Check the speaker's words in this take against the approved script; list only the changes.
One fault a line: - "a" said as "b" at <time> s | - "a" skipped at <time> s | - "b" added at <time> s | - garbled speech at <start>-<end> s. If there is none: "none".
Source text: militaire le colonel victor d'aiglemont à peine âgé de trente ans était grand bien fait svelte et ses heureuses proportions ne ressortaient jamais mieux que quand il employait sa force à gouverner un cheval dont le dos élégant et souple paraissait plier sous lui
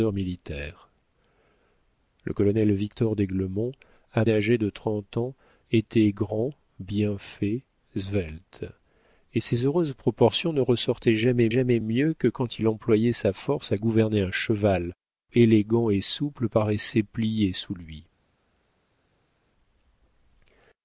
- "peine" skipped at 4.2 s
- "jamais" added at 11.5 s
- "dont le dos" skipped at 14.9 s